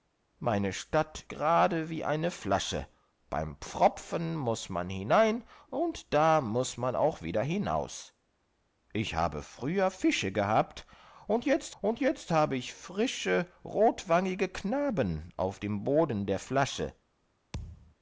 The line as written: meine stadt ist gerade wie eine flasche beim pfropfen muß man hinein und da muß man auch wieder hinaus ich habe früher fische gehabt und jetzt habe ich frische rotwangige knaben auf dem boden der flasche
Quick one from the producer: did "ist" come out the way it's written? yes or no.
no